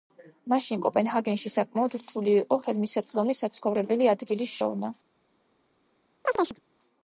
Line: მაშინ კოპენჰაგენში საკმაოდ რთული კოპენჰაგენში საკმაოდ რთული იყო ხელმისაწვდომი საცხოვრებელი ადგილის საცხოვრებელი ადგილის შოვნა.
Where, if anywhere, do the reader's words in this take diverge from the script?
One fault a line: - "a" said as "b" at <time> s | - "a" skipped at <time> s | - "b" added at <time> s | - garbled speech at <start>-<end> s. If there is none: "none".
- "კოპენჰაგენში საკმაოდ რთული" skipped at 2.3 s
- "საცხოვრებელი ადგილის" skipped at 4.6 s